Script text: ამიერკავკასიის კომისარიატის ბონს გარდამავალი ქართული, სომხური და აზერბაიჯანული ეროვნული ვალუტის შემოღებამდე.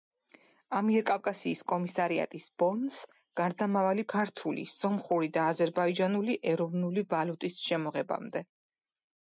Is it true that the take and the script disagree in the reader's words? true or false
false